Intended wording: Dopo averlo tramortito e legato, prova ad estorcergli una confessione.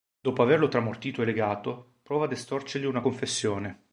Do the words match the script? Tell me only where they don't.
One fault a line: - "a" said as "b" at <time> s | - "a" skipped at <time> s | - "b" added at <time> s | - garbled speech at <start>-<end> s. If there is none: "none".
none